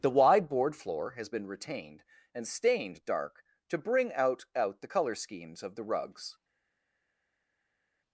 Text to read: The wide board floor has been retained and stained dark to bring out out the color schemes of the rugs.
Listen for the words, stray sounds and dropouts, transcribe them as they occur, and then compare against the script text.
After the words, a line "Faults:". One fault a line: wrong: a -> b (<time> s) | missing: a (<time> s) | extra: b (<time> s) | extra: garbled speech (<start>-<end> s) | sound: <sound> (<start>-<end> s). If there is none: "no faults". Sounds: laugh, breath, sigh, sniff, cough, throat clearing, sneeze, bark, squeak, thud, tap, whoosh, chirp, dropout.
The wide board floor has been retained and stained dark to bring out out the color schemes of the rugs.
Faults:
no faults